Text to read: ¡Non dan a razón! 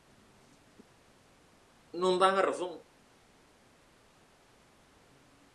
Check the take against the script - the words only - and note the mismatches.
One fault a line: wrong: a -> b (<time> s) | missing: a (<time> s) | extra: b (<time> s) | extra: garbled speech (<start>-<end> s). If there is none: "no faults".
no faults